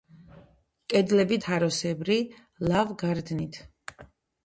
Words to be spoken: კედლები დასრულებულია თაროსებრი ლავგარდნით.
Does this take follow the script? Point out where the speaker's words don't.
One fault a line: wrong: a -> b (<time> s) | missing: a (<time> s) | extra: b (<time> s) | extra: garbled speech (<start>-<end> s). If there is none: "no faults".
missing: დასრულებულია (1.4 s)